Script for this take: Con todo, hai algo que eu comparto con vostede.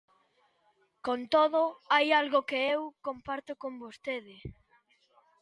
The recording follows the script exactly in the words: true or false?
true